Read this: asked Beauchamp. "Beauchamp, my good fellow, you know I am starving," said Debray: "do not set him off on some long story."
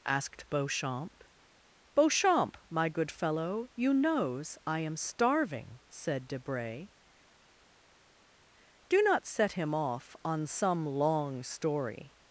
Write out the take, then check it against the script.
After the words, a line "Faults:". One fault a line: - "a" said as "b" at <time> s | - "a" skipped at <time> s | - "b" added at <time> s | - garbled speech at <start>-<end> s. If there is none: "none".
asked Beauchamp. "Beauchamp, my good fellow, you knows I am starving," said Debray: "do not set him off on some long story."
Faults:
- "know" said as "knows" at 3.9 s